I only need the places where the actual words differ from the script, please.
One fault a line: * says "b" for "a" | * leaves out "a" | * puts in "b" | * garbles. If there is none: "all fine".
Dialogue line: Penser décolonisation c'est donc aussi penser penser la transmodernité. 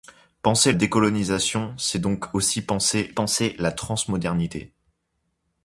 all fine